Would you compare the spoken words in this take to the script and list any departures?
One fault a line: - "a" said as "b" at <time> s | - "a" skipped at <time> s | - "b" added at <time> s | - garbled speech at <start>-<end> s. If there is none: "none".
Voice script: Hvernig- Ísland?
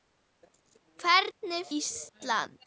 none